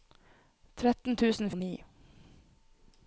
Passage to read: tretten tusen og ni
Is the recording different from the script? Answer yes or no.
no